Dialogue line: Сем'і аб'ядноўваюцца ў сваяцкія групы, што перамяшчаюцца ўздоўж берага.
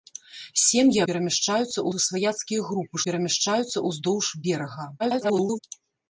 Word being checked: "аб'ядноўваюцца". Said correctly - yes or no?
no